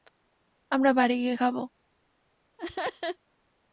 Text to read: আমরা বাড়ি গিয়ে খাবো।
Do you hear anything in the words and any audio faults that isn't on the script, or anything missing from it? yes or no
yes